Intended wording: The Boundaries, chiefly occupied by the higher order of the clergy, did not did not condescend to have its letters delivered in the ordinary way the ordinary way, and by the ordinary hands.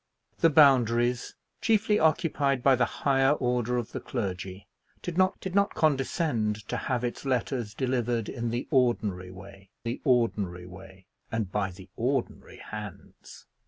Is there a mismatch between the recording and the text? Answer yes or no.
no